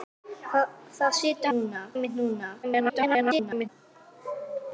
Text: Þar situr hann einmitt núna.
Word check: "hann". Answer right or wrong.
wrong